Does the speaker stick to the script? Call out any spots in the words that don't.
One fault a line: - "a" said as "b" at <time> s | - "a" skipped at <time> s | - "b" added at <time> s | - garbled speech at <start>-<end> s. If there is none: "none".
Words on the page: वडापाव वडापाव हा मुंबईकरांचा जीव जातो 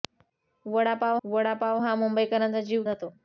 none